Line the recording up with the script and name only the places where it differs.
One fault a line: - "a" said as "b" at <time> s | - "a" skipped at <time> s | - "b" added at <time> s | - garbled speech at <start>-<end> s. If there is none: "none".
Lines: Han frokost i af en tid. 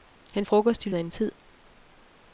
none